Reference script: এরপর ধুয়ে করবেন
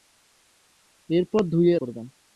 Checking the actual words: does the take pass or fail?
pass